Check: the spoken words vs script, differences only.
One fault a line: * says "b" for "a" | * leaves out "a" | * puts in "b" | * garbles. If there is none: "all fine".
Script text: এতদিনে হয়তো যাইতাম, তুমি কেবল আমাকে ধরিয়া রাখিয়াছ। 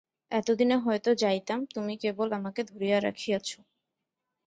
all fine